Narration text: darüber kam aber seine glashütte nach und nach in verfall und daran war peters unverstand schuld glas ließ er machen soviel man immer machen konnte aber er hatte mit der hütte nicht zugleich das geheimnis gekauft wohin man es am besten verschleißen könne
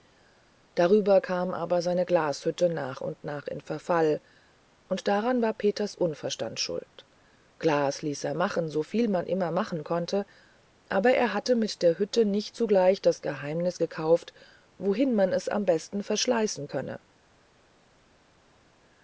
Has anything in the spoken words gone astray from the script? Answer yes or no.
no